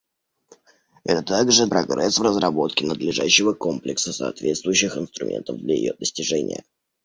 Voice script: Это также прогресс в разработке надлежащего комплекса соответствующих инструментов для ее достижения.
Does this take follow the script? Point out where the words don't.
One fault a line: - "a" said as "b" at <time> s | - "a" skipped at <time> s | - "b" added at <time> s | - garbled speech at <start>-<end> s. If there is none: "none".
none